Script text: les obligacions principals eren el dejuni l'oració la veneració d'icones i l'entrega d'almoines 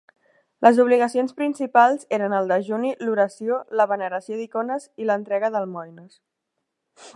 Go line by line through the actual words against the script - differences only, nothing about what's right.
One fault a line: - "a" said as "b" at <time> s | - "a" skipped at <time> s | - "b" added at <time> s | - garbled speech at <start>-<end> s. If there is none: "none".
none